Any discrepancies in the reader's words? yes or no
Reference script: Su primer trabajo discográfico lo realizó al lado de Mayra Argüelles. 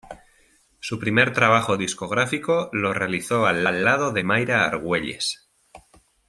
yes